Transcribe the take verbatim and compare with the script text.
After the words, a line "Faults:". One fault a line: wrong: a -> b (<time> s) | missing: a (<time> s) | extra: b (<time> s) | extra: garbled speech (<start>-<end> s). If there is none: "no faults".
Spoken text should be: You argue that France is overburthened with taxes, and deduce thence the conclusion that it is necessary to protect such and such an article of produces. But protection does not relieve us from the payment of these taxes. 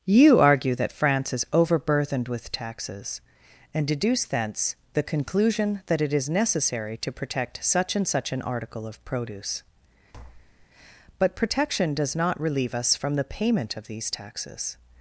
You argue that France is overburthened with taxes, and deduce thence the conclusion that it is necessary to protect such and such an article of produce. But protection does not relieve us from the payment of these taxes.
Faults:
wrong: produces -> produce (9.1 s)